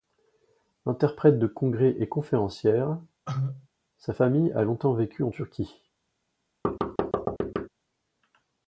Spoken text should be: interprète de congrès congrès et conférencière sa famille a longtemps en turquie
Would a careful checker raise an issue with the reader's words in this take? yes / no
yes